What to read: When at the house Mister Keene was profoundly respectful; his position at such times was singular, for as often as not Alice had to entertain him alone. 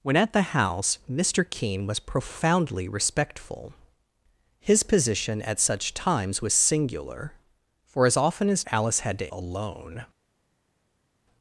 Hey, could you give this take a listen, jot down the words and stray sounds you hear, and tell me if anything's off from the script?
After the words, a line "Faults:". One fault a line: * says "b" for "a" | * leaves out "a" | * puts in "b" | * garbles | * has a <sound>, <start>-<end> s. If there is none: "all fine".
When at the house Mister Keene was profoundly respectful; his position at such times was singular, for as often as Alice had to alone.
Faults:
* leaves out "not"
* leaves out "entertain him"